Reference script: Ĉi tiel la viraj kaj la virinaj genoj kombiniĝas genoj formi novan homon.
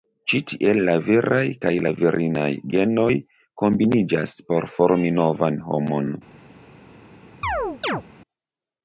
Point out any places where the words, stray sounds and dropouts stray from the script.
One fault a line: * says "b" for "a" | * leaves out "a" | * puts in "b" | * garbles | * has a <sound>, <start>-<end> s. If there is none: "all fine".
* says "por" for "genoj"
* has a chirp, 7.4-8.0 s